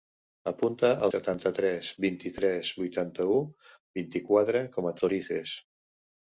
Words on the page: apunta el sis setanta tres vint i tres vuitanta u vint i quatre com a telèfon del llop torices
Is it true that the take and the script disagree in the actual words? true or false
true